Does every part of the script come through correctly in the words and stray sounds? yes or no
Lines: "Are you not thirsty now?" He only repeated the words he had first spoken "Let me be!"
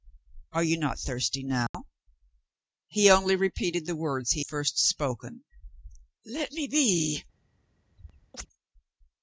no